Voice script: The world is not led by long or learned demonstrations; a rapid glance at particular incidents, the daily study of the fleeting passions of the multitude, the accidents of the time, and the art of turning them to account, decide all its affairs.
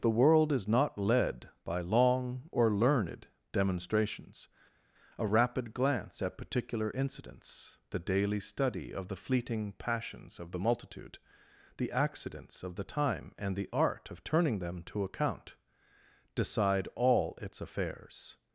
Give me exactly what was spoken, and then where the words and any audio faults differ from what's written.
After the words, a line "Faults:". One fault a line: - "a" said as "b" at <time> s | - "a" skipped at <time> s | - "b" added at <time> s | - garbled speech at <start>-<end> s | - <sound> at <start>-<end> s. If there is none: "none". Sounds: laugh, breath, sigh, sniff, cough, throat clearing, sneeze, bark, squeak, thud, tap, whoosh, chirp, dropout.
The world is not led by long or learned demonstrations; a rapid glance at particular incidents, the daily study of the fleeting passions of the multitude, the accidents of the time, and the art of turning them to account, decide all its affairs.
Faults:
none